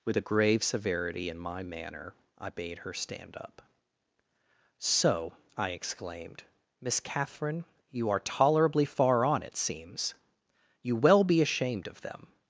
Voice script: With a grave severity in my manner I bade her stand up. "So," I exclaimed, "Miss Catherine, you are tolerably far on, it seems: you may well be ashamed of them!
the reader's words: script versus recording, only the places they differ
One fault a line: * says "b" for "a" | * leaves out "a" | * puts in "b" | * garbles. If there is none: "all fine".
* leaves out "may"